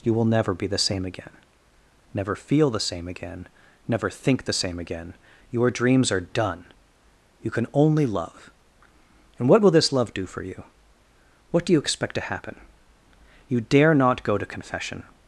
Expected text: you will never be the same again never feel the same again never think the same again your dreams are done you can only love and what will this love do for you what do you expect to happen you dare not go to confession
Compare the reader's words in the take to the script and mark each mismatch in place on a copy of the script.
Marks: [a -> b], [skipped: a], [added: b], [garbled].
you will never be the same again never feel the same again never think the same again your dreams are done you can only love and what will this love do for you what do you expect to happen you dare not go to confession